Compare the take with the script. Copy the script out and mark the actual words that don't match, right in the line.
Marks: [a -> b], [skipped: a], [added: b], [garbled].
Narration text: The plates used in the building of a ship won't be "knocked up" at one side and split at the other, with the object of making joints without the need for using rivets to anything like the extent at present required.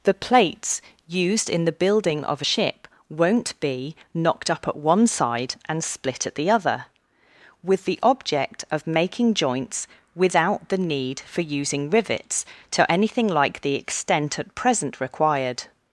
The plates used in the building of a ship won't be "knocked up" at one side and split at the other, with the object of making joints without the need for using rivets to anything like the extent at present required.